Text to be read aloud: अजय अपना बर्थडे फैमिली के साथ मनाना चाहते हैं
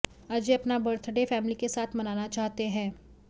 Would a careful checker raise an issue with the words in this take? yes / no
no